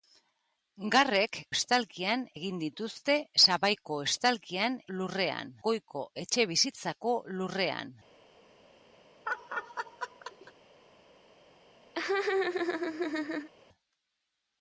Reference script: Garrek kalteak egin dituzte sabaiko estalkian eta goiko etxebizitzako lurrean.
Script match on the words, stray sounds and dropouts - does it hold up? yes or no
no